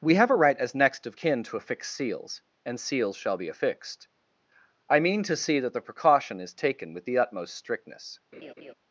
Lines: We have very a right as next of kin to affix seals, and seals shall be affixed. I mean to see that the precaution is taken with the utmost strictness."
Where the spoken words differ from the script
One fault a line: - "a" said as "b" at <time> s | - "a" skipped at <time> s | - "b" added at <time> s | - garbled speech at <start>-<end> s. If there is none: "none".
- "very" skipped at 0.3 s